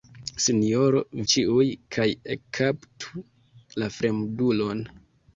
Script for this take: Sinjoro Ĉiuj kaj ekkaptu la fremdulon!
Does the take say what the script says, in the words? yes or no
yes